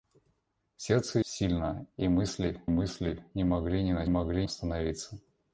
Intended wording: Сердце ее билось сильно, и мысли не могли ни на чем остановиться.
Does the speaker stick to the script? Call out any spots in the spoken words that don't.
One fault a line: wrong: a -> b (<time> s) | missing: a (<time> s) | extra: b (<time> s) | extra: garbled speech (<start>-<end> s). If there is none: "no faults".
missing: ее билось (1.2 s)
extra: мысли (2.7 s)
wrong: чем -> могли (4.1 s)